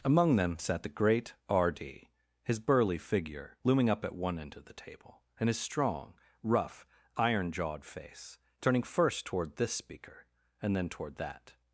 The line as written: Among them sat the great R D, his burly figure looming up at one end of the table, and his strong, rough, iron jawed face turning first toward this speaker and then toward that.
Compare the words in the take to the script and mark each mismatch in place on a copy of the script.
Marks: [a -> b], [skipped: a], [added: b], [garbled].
Among them sat the great R D, his burly figure looming up at one end of the table, and his strong, rough, iron jawed face turning first toward this speaker and then toward that.